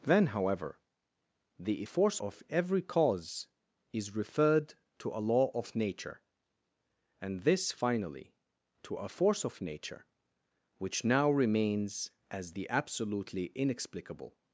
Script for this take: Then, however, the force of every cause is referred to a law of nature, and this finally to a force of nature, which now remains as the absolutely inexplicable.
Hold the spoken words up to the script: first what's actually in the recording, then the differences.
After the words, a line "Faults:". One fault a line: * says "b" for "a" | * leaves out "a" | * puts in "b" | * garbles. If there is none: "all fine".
Then, however, the force of every cause is referred to a law of nature, and this finally to a force of nature, which now remains as the absolutely inexplicable.
Faults:
all fine